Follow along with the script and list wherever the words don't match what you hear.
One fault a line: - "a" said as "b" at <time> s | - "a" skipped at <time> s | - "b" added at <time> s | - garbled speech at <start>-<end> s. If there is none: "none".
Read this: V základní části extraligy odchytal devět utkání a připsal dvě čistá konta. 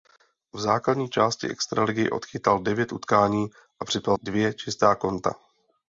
none